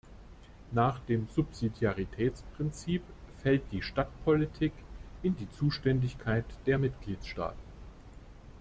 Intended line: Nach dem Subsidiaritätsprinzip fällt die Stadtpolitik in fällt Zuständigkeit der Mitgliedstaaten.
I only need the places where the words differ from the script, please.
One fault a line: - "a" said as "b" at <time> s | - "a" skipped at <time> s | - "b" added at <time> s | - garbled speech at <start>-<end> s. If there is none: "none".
- "fällt" said as "die" at 5.3 s